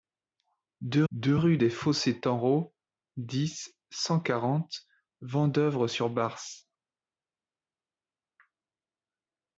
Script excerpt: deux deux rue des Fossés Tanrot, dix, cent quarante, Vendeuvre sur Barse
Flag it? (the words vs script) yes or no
no